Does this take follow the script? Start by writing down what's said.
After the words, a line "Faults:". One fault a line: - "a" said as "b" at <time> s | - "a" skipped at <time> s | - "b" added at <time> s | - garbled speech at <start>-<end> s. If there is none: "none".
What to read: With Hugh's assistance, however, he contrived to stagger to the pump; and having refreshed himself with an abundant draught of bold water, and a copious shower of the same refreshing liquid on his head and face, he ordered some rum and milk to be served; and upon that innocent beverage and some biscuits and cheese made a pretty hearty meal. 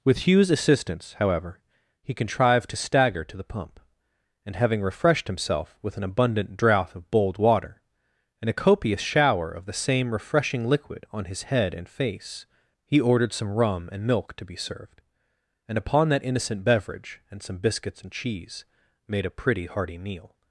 With Hugh's assistance, however, he contrived to stagger to the pump; and having refreshed himself with an abundant draught of bold water, and a copious shower of the same refreshing liquid on his head and face, he ordered some rum and milk to be served; and upon that innocent beverage and some biscuits and cheese made a pretty hearty meal.
Faults:
none